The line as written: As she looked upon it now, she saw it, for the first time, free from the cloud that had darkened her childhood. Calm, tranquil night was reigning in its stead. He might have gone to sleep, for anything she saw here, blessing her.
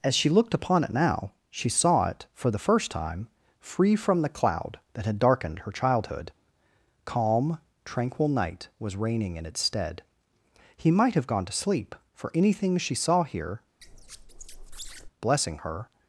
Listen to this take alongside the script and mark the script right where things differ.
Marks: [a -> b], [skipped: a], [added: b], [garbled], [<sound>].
As she looked upon it now, she saw it, for the first time, free from the cloud that had darkened her childhood. Calm, tranquil night was reigning in its stead. He might have gone to sleep, for anything she saw here, [squeak] blessing her.